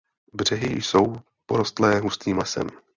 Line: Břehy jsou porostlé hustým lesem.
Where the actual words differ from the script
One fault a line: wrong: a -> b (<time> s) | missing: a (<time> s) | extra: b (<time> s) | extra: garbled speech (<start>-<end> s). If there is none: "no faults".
no faults